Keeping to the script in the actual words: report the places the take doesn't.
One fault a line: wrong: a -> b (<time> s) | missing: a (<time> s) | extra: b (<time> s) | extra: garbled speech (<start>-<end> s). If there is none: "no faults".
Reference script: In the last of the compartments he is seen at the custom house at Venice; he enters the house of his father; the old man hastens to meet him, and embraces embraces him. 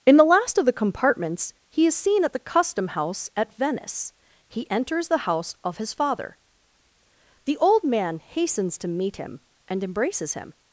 missing: embraces (10.3 s)